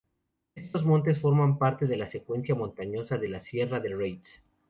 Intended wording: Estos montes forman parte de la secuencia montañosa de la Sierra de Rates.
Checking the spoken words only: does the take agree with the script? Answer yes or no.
yes